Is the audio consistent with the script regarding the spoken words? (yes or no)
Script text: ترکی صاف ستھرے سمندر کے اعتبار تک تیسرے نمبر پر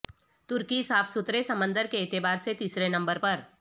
no